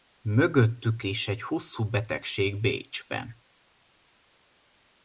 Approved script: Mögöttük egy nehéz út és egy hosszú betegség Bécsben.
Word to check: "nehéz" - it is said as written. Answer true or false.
false